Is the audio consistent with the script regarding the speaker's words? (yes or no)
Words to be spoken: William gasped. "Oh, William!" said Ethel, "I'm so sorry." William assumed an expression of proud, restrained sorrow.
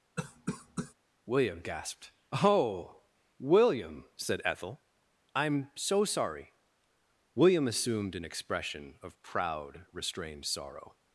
yes